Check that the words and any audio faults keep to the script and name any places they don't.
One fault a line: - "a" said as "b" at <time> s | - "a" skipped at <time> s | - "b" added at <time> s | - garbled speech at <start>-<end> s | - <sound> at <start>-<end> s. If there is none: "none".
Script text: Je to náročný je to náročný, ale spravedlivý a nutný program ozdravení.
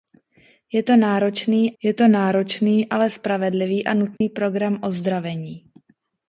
- dropout at 4.2-4.2 s